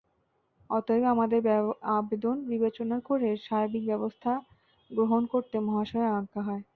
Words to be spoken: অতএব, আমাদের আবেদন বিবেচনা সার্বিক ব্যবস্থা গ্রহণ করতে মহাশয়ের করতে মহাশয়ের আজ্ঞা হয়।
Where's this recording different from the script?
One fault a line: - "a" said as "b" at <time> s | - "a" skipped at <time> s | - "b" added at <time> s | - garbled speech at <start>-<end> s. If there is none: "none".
- "করে" added at 3.1 s
- "করতে মহাশয়ের" skipped at 6.1 s